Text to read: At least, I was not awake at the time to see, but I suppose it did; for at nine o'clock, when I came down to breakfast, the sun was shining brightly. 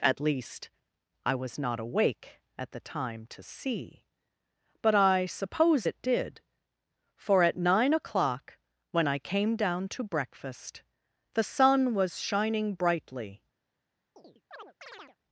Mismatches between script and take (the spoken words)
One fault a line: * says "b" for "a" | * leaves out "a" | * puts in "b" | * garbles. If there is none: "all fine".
all fine